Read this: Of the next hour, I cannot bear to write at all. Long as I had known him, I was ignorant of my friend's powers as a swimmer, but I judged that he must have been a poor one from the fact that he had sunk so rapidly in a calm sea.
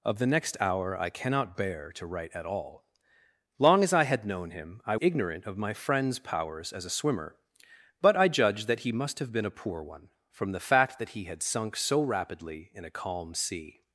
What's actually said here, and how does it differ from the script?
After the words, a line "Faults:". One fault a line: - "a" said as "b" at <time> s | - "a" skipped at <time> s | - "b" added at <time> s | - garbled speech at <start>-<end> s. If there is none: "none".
Of the next hour, I cannot bear to write at all. Long as I had known him, I ignorant of my friend's powers as a swimmer, but I judged that he must have been a poor one from the fact that he had sunk so rapidly in a calm sea.
Faults:
- "was" skipped at 5.0 s